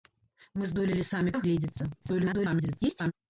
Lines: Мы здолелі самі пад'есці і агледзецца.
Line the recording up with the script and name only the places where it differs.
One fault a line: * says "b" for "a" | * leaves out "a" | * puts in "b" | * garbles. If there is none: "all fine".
* leaves out "пад'есці"
* garbles